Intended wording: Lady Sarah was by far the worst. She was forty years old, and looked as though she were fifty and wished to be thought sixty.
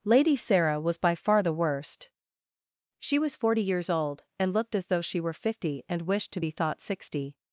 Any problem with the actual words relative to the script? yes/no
no